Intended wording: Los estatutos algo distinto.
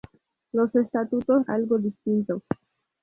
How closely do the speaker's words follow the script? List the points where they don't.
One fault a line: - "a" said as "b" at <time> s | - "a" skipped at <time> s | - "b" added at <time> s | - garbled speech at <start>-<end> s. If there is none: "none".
none